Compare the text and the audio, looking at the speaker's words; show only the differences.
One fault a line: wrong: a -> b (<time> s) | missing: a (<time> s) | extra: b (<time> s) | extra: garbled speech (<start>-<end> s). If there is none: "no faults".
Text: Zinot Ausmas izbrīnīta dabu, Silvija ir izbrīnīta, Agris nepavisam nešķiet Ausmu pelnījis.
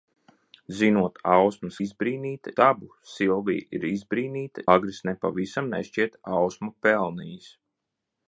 no faults